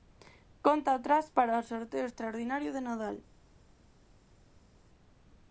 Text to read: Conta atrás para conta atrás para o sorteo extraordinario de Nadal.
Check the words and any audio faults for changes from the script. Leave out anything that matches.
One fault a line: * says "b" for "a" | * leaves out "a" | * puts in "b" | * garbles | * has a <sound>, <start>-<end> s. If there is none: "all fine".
* leaves out "conta atrás para"